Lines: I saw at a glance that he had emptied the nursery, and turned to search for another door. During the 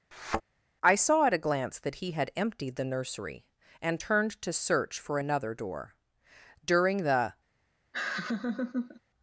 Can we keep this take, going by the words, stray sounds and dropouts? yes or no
no